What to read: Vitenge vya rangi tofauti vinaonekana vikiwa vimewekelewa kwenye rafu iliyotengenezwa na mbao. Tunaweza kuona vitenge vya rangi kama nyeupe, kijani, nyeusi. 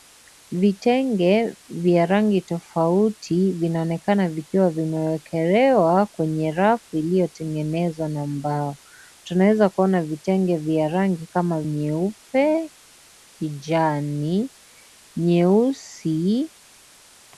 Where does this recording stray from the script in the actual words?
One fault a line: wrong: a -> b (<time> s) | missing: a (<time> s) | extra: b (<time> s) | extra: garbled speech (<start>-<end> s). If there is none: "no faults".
no faults